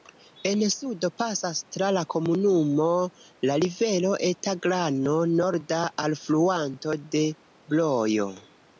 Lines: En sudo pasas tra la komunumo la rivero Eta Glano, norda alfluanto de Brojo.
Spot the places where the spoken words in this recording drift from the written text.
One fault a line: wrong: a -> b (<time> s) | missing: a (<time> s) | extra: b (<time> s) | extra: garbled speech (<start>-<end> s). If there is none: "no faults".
no faults